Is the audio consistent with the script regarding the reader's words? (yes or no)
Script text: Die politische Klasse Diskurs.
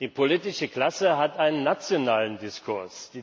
no